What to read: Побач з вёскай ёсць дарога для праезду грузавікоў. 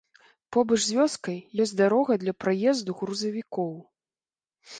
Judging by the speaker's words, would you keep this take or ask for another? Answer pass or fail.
pass